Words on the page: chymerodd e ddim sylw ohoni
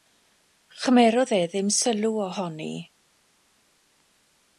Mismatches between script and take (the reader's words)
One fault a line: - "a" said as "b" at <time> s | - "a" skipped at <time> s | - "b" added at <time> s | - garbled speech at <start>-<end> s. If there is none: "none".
none